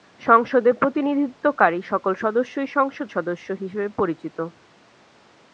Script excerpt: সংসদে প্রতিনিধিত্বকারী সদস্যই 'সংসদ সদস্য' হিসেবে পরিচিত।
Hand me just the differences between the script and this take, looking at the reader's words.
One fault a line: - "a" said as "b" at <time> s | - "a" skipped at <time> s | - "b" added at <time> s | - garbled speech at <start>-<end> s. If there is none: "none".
- "সকল" added at 1.9 s